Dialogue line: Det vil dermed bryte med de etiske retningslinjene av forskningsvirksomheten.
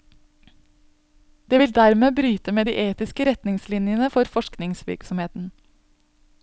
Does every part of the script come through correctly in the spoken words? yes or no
no